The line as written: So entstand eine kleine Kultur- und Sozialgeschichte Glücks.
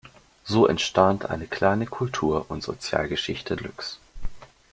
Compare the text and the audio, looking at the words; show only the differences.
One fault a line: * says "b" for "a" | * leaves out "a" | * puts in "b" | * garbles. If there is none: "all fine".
all fine